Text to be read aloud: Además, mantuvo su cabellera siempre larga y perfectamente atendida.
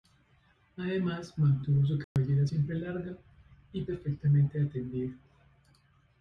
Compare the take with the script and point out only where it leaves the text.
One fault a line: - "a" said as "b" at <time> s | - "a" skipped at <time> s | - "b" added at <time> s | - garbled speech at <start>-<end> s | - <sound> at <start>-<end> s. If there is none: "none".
- dropout at 2.0-2.2 s